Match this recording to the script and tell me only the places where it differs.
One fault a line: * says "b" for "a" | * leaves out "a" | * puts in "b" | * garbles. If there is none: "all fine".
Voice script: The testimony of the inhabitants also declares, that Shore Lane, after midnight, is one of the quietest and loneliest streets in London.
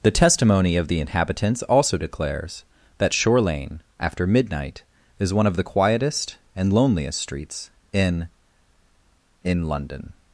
* puts in "in"